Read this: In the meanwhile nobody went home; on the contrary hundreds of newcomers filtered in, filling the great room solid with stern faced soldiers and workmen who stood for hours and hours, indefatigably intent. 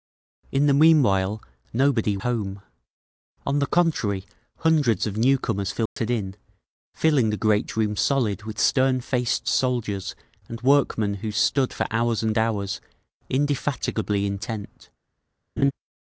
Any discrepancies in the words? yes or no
yes